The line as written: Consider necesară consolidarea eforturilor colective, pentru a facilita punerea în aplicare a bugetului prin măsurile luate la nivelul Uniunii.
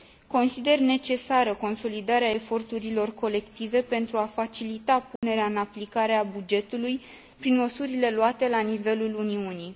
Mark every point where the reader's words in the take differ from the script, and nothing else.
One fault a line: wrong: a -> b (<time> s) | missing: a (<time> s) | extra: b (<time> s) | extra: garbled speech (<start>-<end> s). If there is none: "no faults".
no faults